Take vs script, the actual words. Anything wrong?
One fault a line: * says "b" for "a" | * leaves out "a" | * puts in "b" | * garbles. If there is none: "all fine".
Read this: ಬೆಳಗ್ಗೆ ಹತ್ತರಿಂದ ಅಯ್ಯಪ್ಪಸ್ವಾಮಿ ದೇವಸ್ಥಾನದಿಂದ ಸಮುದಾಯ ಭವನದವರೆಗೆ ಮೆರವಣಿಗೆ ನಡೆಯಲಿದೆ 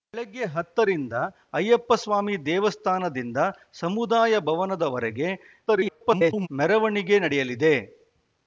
* garbles